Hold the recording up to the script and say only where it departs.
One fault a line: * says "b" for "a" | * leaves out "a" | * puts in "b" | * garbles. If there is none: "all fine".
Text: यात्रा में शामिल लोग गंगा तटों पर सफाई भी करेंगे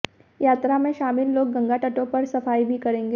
all fine